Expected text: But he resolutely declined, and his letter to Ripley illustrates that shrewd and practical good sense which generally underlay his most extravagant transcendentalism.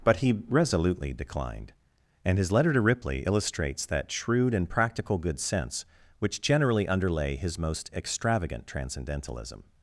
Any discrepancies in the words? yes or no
no